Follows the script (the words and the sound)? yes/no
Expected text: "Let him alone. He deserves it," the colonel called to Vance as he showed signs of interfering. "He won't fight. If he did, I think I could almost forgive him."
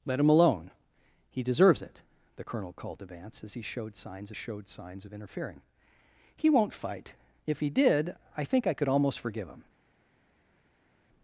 no